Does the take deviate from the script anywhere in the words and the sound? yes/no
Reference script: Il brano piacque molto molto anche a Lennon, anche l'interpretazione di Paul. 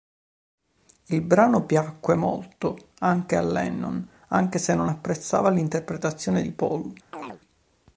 yes